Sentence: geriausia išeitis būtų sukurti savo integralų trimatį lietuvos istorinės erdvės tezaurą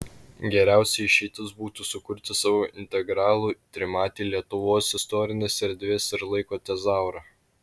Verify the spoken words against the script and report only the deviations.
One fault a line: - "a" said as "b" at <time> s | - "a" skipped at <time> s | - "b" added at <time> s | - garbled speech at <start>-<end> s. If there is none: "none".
- "ir laiko" added at 6.2 s